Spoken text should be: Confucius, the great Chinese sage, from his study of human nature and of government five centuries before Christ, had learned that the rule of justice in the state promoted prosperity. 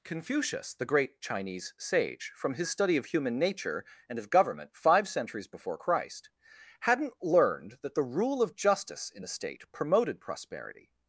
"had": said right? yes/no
no